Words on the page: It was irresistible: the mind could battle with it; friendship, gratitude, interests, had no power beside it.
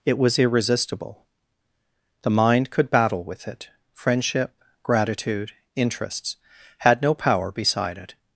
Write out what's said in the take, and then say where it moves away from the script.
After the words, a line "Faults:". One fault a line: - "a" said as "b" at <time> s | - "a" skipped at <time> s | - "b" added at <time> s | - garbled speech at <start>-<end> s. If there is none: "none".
It was irresistible: the mind could battle with it; friendship, gratitude, interests, had no power beside it.
Faults:
none